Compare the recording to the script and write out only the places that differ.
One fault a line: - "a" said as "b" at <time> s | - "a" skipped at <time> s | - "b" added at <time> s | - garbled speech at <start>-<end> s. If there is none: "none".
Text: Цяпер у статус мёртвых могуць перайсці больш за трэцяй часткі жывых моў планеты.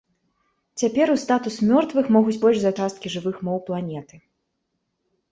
- "перайсці" skipped at 2.4 s
- "трэцяй" skipped at 2.7 s